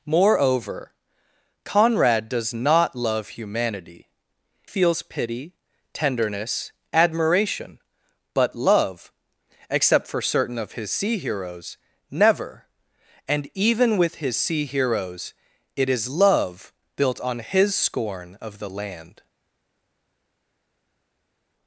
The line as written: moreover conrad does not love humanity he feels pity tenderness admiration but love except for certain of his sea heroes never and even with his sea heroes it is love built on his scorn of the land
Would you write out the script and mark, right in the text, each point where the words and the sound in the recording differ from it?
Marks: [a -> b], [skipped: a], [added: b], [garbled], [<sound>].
moreover conrad does not love humanity [skipped: he] feels pity tenderness admiration but love except for certain of his sea heroes never and even with his sea heroes it is love built on his scorn of the land